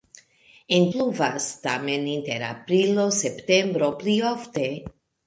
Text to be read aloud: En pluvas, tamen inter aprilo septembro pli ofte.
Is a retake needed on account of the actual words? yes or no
no